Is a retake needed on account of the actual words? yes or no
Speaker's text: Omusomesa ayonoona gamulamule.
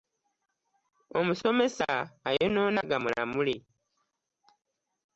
no